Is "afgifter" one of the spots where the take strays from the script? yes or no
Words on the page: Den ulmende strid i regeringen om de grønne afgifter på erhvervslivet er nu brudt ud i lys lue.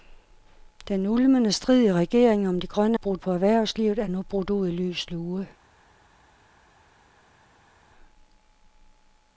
yes